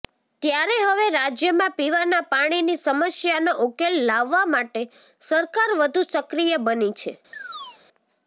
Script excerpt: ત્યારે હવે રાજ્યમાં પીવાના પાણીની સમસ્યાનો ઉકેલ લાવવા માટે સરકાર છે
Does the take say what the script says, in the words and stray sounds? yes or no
no